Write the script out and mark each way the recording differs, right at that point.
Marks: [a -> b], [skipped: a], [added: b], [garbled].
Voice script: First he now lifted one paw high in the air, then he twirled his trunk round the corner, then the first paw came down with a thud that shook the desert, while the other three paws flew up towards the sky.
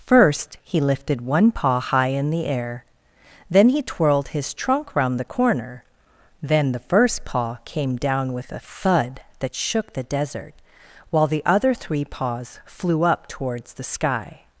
First he [skipped: now] lifted one paw high in the air, then he twirled his trunk round the corner, then the first paw came down with a thud that shook the desert, while the other three paws flew up towards the sky.